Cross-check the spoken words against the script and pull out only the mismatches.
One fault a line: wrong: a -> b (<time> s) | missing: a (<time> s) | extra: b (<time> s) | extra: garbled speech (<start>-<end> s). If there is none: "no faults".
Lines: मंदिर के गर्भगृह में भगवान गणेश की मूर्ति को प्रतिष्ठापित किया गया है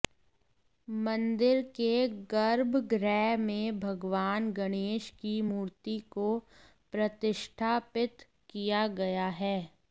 no faults